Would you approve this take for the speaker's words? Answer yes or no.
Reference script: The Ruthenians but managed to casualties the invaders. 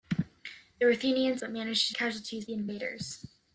yes